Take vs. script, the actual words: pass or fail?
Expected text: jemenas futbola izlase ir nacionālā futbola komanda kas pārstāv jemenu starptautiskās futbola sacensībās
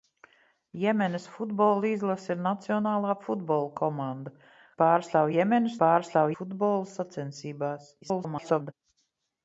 fail